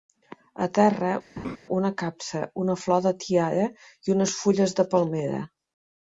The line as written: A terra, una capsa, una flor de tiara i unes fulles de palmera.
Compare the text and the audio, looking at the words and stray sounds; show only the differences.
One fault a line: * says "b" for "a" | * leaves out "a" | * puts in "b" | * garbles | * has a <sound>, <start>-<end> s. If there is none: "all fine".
* has a laugh, 1.4-1.6 s